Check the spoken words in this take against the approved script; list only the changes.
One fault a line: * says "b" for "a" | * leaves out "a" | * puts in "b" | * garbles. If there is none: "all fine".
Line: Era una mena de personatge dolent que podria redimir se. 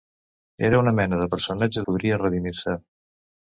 * leaves out "dolent que"